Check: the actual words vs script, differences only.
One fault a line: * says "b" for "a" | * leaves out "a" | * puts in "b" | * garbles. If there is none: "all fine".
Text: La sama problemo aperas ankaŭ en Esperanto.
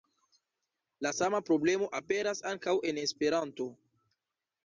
all fine